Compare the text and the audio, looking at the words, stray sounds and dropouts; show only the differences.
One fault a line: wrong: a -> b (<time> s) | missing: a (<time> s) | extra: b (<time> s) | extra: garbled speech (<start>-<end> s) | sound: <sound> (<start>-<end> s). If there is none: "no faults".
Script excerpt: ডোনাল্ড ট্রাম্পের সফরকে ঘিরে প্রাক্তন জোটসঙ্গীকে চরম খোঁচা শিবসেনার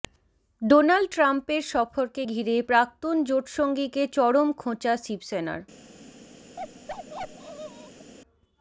sound: bark (6.6-8.1 s)